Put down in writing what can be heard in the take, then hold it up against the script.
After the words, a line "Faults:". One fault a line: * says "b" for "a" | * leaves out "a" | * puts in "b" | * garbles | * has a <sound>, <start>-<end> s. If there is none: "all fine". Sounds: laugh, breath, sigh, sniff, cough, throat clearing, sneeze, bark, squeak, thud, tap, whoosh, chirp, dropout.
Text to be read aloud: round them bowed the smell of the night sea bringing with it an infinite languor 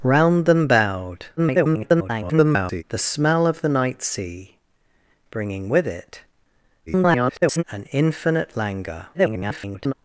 round them bowed [garbled] the smell of the night sea bringing with it [garbled] an infinite languor [garbled]
Faults:
* garbles
* garbles
* garbles